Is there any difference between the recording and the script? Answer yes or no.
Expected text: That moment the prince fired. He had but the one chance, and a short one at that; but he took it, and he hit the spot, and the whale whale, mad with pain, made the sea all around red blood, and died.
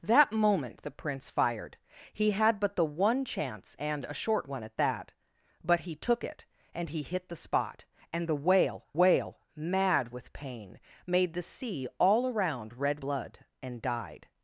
no